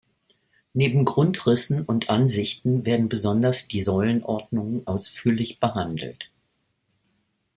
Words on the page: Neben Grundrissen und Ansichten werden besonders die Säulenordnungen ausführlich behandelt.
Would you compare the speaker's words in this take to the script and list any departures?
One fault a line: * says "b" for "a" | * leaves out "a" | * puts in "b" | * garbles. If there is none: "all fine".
all fine